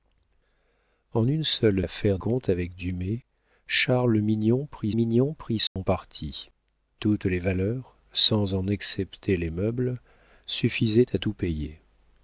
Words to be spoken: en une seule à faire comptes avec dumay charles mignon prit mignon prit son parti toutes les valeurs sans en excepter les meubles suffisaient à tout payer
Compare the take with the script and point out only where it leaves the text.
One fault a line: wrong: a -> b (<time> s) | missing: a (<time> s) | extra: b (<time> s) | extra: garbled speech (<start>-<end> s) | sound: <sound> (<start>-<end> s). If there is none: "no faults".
sound: dropout (5.7-5.8 s)